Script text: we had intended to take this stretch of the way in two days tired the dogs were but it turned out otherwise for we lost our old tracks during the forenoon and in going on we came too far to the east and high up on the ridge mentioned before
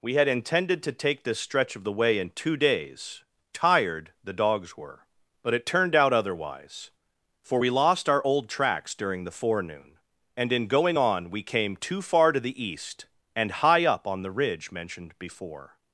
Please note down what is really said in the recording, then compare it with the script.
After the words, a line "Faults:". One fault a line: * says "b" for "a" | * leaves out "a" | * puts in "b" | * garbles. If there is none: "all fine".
we had intended to take this stretch of the way in two days tired the dogs were but it turned out otherwise for we lost our old tracks during the forenoon and in going on we came too far to the east and high up on the ridge mentioned before
Faults:
all fine